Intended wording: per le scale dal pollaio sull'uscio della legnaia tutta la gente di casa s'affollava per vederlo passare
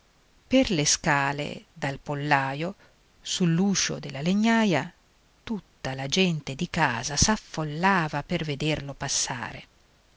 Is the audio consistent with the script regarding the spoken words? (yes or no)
yes